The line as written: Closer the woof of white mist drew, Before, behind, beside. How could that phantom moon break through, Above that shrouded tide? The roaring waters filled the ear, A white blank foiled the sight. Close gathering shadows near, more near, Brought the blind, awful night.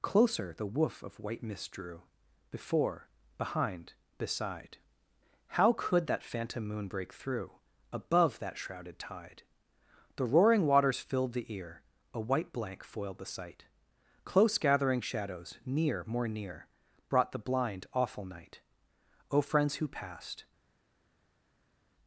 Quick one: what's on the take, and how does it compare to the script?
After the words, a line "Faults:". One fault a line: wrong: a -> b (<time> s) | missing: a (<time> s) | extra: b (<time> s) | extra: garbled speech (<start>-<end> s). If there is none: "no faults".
Closer the woof of white mist drew, Before, behind, beside. How could that phantom moon break through, Above that shrouded tide? The roaring waters filled the ear, A white blank foiled the sight. Close gathering shadows near, more near, Brought the blind, awful night. O friends who passed
Faults:
extra: O friends who passed (19.3 s)